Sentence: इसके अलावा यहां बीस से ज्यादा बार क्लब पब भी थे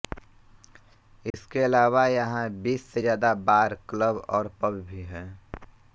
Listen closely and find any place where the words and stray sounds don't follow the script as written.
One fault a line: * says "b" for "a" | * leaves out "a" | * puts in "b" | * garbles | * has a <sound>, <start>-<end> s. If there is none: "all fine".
* has a dropout, 1.3-1.3 s
* puts in "और"
* says "हैं" for "थे"